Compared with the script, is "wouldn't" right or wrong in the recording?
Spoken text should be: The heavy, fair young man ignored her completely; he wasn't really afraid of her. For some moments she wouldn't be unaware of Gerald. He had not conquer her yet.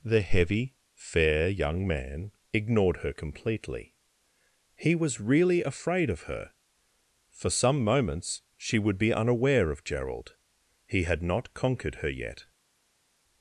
wrong